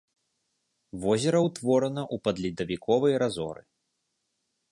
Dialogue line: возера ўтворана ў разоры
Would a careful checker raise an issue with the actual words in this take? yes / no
yes